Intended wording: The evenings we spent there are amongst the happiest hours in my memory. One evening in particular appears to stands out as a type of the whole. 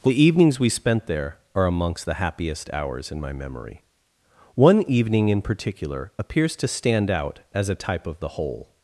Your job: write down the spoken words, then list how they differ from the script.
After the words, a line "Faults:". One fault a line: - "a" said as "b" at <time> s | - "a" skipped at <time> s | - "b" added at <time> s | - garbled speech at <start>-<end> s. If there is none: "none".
The evenings we spent there are amongst the happiest hours in my memory. One evening in particular appears to stand out as a type of the whole.
Faults:
- "stands" said as "stand" at 6.7 s